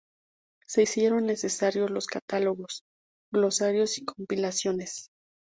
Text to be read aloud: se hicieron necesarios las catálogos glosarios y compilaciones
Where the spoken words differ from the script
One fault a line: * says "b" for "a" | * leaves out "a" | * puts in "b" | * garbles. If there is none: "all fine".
* says "los" for "las"